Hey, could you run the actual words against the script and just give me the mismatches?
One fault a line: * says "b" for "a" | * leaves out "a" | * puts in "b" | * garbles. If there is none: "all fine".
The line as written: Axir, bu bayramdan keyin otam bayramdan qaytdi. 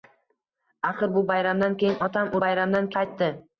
all fine